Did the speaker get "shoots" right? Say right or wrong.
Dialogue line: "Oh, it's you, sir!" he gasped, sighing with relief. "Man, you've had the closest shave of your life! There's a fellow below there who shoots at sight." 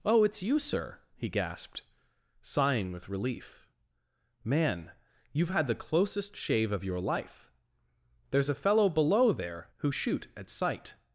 wrong